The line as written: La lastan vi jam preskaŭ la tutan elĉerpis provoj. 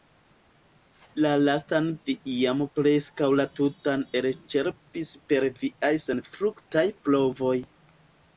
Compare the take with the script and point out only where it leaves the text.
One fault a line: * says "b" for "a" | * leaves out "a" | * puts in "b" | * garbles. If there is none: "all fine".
* puts in "per viaj senfruktaj"